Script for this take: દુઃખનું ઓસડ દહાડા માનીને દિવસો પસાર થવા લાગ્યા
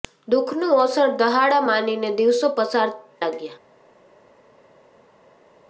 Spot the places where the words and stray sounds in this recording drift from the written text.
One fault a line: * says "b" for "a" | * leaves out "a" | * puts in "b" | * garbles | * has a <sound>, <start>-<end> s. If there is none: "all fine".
* leaves out "થવા"